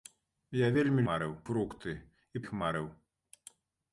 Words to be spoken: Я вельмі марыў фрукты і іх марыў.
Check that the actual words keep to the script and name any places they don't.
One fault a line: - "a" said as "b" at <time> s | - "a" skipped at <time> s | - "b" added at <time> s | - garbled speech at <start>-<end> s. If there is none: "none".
none